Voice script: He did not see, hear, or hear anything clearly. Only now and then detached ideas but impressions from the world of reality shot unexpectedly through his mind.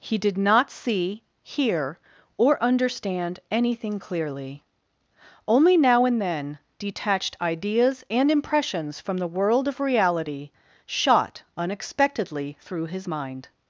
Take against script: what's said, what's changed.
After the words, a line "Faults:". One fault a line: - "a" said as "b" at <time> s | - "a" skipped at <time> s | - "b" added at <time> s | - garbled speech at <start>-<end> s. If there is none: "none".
He did not see, hear, or understand anything clearly. Only now and then detached ideas and impressions from the world of reality shot unexpectedly through his mind.
Faults:
- "hear" said as "understand" at 2.6 s
- "but" said as "and" at 8.1 s